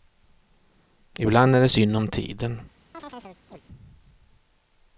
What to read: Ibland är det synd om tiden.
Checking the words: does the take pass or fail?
pass